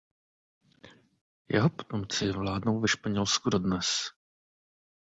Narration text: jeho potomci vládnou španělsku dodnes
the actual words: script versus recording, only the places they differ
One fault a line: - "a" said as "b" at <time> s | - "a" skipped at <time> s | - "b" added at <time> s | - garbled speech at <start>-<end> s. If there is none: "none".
- "ve" added at 2.8 s